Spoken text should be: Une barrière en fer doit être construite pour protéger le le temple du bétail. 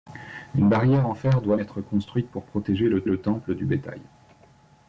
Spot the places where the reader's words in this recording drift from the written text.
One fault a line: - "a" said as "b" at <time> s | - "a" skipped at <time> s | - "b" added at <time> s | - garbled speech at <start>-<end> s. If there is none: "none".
none